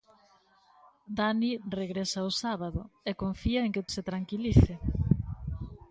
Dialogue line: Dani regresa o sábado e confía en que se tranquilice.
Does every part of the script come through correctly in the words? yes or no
yes